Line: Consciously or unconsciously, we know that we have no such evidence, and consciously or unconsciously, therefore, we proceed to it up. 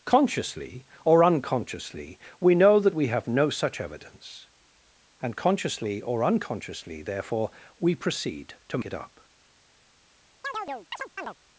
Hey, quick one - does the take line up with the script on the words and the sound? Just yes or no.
no